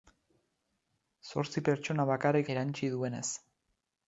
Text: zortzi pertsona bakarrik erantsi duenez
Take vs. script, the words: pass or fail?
pass